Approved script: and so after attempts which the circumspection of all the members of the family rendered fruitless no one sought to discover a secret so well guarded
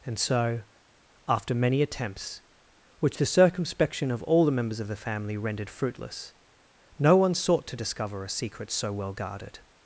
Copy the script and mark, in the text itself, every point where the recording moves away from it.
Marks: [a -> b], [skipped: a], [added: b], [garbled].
and so after [added: many] attempts which the circumspection of all the members of the family rendered fruitless no one sought to discover a secret so well guarded